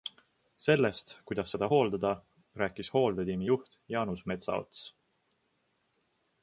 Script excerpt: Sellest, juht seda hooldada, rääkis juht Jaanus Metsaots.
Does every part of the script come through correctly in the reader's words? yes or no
no